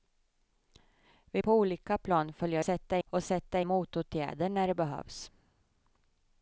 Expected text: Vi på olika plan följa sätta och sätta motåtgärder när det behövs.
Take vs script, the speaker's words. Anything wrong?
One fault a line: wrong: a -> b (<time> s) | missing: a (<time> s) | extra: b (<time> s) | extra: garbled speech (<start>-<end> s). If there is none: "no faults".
no faults